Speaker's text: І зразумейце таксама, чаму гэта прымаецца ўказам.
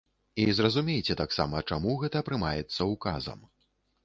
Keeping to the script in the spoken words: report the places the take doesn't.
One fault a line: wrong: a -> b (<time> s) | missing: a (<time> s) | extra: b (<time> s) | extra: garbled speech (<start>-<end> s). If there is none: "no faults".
no faults